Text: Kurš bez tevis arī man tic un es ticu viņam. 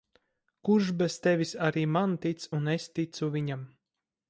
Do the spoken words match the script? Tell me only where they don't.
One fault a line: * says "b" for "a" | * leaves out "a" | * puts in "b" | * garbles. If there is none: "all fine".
all fine